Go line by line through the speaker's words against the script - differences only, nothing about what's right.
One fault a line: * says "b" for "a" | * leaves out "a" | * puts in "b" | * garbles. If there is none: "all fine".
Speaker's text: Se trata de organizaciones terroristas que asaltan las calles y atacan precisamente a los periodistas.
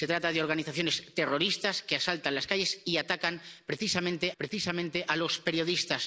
* puts in "precisamente"